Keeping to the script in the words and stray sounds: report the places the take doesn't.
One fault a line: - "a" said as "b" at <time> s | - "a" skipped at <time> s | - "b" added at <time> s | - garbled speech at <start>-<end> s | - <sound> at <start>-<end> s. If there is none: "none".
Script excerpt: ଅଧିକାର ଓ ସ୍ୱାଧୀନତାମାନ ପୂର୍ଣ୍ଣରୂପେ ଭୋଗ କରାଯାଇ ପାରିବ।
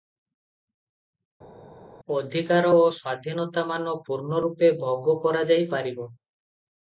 none